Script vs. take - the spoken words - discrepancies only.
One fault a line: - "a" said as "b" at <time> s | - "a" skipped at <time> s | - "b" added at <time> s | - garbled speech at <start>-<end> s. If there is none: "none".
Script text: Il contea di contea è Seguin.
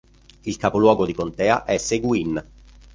- "contea" said as "capoluogo" at 0.6 s